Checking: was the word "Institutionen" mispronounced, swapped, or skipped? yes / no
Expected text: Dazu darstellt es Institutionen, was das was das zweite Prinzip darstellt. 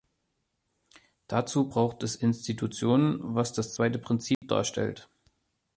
no